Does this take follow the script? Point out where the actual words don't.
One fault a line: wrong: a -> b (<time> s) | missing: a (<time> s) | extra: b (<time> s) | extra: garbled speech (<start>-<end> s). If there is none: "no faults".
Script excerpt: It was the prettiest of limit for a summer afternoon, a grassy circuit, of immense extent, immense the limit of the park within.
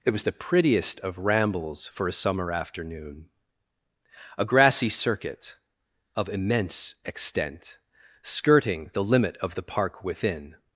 wrong: limit -> rambles (1.2 s)
wrong: immense -> skirting (8.2 s)